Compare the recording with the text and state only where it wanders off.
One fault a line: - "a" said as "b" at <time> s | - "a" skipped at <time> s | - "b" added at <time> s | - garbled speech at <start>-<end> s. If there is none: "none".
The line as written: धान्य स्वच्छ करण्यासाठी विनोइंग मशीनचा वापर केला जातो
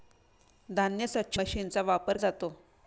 - "करण्यासाठी विनोइंग" skipped at 1.4 s
- "केला" skipped at 2.2 s